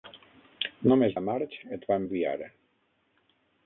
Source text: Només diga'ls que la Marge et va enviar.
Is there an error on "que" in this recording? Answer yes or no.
yes